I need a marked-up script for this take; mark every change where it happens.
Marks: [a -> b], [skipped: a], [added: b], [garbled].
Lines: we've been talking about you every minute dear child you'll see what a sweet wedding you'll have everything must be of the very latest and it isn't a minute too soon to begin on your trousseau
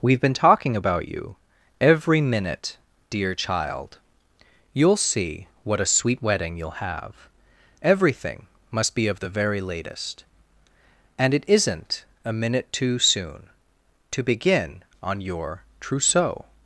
we've been talking about you every minute dear child you'll see what a sweet wedding you'll have everything must be of the very latest and it isn't a minute too soon to begin on your trousseau